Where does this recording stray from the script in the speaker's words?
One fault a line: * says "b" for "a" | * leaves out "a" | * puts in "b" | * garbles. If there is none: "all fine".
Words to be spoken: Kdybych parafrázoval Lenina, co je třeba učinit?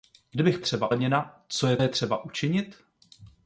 * says "třeba" for "parafrázoval"
* puts in "je"